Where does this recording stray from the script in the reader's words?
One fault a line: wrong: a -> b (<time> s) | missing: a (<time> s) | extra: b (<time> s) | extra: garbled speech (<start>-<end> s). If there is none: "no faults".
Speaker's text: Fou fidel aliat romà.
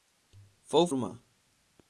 missing: fidel aliat (0.9 s)